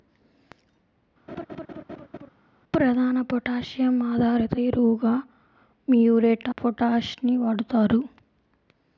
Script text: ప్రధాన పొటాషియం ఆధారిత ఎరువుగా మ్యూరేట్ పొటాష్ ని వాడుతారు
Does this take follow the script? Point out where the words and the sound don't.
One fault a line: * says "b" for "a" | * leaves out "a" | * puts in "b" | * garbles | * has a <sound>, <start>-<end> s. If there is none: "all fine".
* has a laugh, 1.3-2.3 s